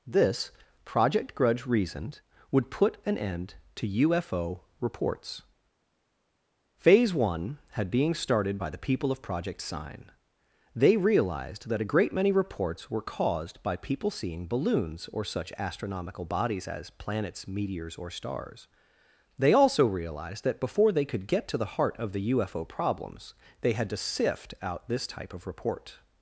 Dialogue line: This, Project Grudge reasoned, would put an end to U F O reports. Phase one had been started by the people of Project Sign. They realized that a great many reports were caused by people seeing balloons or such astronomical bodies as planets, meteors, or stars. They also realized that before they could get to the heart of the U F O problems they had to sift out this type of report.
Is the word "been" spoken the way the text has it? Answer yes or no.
no